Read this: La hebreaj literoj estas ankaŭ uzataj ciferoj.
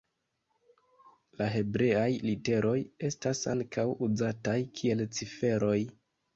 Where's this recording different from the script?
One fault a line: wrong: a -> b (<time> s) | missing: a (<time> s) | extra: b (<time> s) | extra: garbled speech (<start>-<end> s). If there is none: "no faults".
extra: kiel (4.8 s)